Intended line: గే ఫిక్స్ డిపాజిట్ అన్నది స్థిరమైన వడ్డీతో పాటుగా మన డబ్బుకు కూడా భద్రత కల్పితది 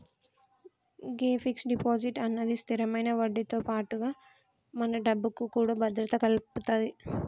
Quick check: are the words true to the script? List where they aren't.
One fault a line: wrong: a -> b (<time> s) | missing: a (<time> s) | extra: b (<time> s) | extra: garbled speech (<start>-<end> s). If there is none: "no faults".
no faults